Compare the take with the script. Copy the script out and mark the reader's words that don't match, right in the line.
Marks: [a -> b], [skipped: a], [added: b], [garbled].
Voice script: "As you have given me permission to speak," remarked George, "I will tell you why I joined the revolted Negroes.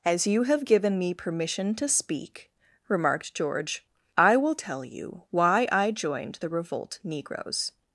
"As you have given me permission to speak," remarked George, "I will tell you why I joined the [revolted -> revolt] Negroes.